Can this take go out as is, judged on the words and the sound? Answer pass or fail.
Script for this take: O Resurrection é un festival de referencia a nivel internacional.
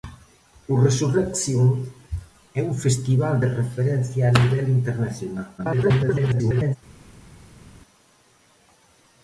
fail